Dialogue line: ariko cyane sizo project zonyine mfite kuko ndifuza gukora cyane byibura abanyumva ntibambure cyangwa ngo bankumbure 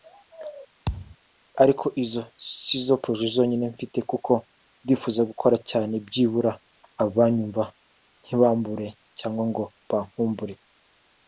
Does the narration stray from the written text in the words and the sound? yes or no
yes